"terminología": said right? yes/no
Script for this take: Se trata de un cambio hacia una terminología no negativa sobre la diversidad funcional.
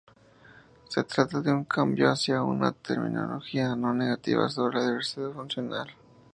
yes